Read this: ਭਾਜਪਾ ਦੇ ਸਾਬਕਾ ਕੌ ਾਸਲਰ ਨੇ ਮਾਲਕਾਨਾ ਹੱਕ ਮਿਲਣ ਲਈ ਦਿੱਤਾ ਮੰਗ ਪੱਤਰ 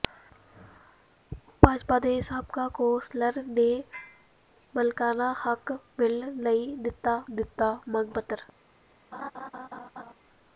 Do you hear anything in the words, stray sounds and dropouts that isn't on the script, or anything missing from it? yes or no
yes